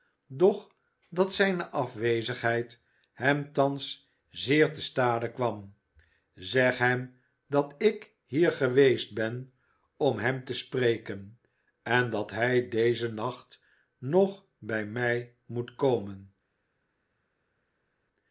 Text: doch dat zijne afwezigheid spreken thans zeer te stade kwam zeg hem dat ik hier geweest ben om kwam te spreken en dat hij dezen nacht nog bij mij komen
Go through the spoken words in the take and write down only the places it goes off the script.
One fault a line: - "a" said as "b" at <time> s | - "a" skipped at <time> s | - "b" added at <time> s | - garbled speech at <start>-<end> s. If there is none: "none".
- "spreken" said as "hem" at 3.1 s
- "kwam" said as "hem" at 10.2 s
- "moet" added at 15.4 s